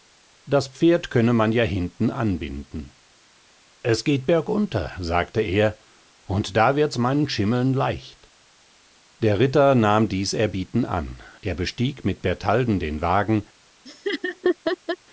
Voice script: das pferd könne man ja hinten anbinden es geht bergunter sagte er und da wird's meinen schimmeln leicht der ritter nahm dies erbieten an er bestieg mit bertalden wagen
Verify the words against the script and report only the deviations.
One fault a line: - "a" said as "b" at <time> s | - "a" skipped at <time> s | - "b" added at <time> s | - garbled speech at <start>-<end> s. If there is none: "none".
- "den" added at 12.8 s